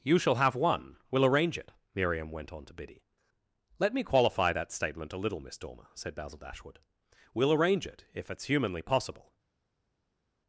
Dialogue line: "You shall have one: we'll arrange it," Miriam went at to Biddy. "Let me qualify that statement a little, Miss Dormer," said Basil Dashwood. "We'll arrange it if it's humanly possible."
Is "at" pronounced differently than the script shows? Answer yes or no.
yes